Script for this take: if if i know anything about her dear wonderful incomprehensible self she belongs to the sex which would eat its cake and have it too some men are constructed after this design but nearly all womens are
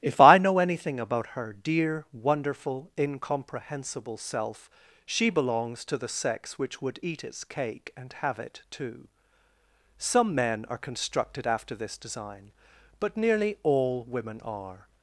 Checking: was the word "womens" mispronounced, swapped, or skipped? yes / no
yes